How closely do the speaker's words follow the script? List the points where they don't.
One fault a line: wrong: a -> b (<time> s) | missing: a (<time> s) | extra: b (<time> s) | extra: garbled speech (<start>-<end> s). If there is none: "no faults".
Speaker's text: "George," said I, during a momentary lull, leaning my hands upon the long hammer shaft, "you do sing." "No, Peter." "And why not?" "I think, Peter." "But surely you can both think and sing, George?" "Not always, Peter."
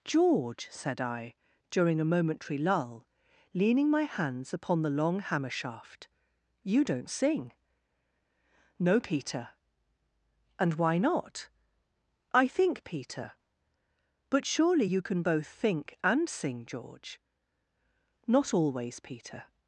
wrong: do -> don't (6.8 s)